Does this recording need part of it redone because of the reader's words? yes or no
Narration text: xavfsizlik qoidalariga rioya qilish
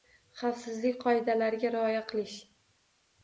no